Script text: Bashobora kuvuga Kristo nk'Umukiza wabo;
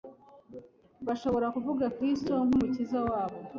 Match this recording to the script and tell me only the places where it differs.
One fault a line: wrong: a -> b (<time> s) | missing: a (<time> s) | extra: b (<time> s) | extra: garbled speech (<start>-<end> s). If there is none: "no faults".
no faults